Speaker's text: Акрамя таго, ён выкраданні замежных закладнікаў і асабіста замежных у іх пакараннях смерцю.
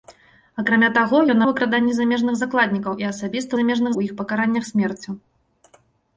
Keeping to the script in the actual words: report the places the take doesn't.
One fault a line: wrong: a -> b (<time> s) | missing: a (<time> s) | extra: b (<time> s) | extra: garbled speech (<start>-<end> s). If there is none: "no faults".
no faults